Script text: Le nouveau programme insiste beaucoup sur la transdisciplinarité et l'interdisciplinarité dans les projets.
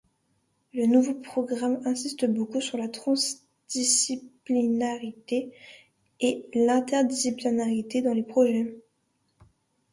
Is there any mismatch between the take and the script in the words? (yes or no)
no